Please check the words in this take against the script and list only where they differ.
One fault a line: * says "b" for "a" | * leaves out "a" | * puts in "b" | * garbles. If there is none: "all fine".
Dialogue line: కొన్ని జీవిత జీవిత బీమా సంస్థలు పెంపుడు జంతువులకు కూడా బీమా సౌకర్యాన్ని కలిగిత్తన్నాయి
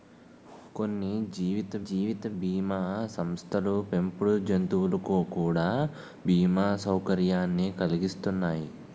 all fine